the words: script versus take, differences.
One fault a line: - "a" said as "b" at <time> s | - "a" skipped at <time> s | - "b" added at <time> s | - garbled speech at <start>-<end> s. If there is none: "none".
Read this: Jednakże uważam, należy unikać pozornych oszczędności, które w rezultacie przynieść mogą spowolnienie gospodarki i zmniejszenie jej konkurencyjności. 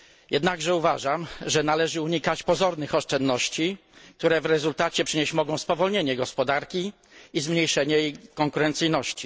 - "że" added at 1.4 s